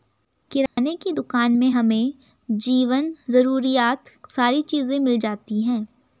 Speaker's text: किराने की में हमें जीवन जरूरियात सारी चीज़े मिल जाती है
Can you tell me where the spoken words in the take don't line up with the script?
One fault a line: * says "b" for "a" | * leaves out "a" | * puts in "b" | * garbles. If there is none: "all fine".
* puts in "दुकान"